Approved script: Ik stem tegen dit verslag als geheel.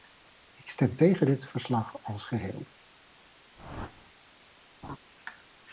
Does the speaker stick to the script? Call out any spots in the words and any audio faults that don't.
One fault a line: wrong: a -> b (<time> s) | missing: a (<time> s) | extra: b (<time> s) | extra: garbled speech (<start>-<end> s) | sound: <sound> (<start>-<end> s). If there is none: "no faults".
sound: whoosh (3.6-4.1 s)
sound: laugh (4.8-5.0 s)